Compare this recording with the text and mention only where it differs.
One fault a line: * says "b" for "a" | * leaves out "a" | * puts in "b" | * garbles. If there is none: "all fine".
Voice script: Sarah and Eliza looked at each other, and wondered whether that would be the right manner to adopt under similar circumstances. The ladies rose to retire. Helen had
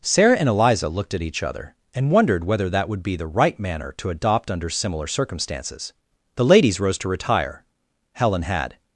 all fine